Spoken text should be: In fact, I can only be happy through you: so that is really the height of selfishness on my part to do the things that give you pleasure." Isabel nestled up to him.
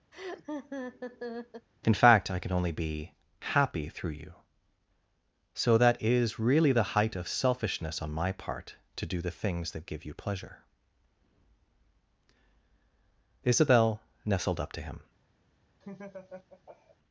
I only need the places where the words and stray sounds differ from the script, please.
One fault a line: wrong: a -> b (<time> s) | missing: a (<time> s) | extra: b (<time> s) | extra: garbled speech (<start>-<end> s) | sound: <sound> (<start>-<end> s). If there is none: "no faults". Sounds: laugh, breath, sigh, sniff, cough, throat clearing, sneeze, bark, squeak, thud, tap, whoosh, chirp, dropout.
sound: laugh (0.1-1.7 s)
sound: laugh (15.8-17.0 s)